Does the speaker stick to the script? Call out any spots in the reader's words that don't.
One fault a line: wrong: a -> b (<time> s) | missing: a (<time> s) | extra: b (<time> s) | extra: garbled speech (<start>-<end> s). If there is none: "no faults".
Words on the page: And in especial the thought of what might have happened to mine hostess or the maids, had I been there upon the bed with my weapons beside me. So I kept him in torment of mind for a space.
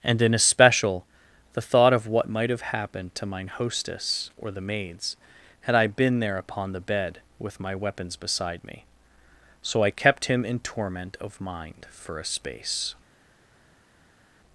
no faults